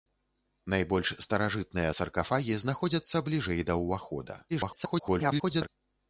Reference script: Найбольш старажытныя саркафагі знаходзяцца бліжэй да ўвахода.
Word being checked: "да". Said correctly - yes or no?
yes